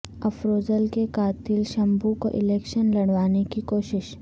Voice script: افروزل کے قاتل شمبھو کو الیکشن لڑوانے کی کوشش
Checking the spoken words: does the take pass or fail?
pass